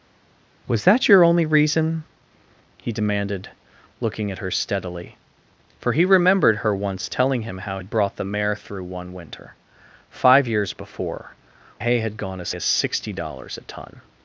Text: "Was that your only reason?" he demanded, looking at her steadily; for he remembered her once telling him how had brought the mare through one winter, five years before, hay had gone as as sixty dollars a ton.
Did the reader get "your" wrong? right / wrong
right